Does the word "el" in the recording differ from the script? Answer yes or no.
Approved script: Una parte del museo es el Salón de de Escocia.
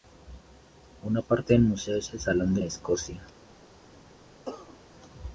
no